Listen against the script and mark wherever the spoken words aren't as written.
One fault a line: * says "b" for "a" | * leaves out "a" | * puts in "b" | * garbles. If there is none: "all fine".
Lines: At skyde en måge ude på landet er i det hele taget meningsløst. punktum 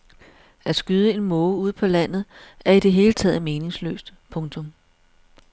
all fine